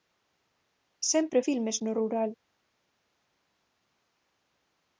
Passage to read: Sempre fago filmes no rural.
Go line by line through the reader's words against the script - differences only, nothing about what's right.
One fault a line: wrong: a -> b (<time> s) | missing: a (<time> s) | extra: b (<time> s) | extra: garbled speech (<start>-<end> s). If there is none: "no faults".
missing: fago (1.4 s)